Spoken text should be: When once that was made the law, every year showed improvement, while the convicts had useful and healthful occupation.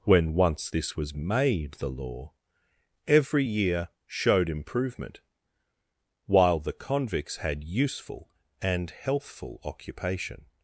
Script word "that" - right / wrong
wrong